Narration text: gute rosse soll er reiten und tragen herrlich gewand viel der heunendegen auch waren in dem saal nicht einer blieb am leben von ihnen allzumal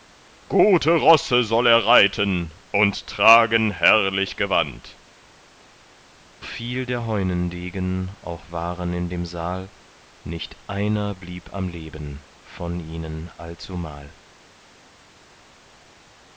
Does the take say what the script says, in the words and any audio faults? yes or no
yes